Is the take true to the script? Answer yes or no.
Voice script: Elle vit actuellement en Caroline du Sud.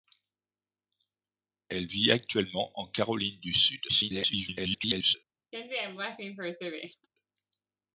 no